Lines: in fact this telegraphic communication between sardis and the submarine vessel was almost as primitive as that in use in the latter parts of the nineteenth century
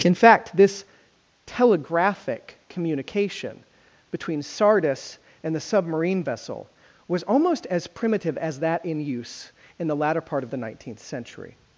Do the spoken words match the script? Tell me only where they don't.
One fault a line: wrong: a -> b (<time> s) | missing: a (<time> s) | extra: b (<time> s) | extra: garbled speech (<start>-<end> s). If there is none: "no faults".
wrong: parts -> part (10.2 s)